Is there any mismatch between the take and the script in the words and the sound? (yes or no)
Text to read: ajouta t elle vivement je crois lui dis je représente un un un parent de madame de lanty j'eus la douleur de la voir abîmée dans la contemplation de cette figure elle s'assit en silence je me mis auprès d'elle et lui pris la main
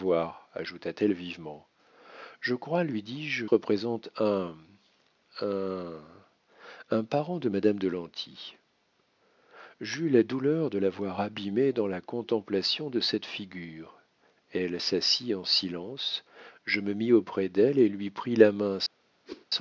yes